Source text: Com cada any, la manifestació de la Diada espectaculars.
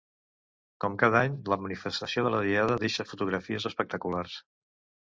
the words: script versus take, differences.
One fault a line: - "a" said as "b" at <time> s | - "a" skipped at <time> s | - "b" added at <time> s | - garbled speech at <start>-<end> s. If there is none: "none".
- "deixa fotografies" added at 2.9 s